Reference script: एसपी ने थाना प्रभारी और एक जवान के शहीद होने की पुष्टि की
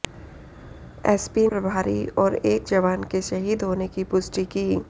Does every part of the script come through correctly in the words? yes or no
no